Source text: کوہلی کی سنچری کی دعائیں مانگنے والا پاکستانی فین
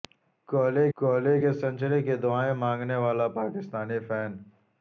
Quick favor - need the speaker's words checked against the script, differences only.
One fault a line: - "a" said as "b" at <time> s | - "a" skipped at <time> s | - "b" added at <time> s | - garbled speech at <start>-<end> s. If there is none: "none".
- "کوہلی" added at 1.0 s